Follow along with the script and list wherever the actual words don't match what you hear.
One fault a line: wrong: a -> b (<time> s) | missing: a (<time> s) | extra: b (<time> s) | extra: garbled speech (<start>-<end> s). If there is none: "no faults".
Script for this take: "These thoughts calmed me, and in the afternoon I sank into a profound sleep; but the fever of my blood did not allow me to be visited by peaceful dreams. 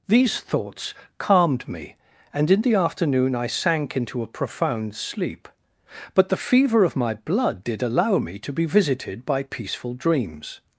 missing: not (7.8 s)